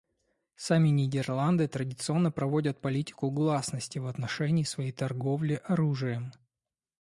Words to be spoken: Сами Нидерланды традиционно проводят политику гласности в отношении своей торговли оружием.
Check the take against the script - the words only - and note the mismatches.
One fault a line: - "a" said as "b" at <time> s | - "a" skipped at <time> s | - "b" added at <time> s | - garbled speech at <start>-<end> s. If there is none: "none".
none